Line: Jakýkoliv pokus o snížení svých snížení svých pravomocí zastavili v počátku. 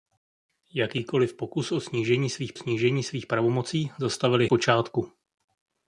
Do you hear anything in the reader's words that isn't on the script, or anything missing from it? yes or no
no